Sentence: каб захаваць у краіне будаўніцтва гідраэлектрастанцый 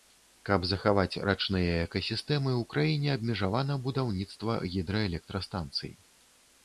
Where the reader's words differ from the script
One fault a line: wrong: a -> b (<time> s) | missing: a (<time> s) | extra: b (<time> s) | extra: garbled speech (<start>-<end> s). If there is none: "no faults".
extra: рачныя экасістэмы (1.3 s)
extra: абмежавана (3.2 s)